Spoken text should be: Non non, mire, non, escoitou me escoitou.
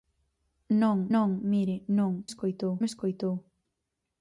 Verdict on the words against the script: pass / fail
pass